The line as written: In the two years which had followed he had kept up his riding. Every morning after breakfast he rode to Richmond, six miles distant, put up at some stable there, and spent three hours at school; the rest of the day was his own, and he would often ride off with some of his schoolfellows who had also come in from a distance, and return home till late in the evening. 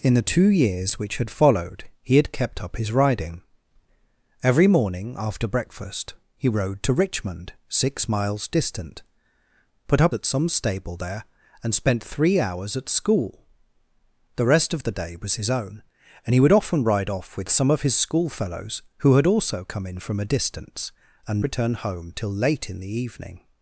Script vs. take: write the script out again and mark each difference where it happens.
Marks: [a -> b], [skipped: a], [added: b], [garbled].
In the two years which had followed he had kept up his riding. Every morning after breakfast he rode to Richmond, six miles distant, put up at some stable there, and spent three hours at school; the rest of the day was his own, and he would often ride off with some of his schoolfellows who had also come in from a distance, and return home till late in the evening.